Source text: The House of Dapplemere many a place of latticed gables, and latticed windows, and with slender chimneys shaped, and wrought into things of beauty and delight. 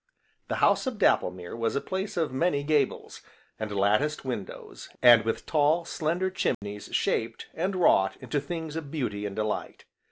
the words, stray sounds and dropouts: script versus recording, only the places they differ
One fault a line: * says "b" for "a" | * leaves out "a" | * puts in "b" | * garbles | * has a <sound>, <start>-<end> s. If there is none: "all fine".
* says "was" for "many"
* says "many" for "latticed"
* puts in "tall"
* has a dropout, 6.5-6.6 s